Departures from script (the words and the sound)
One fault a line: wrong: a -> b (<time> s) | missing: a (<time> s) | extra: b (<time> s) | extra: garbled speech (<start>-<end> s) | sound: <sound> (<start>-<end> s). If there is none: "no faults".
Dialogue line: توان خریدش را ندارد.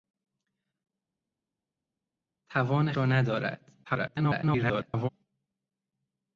missing: خریدش (2.9 s)
extra: garbled speech (3.8-5.1 s)